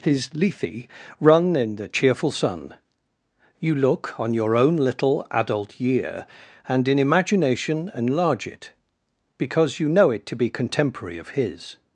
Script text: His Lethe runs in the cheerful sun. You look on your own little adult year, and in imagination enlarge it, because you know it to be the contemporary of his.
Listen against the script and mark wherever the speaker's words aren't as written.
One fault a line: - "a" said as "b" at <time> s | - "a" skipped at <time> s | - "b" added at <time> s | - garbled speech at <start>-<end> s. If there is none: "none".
- "runs" said as "run" at 1.2 s
- "the" skipped at 10.5 s